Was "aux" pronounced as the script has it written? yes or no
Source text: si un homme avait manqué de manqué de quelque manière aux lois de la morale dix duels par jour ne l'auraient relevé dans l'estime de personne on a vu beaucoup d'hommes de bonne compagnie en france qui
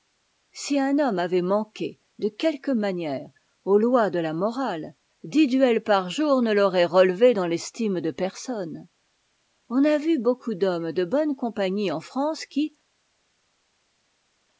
yes